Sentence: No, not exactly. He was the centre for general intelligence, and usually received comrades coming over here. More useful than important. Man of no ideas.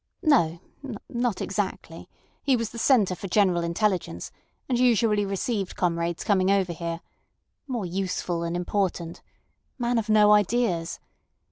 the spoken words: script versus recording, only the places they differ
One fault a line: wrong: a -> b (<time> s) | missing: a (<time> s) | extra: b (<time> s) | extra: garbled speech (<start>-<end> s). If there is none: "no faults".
no faults